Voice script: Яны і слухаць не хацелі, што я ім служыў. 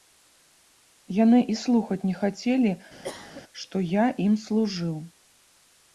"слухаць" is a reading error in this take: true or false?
false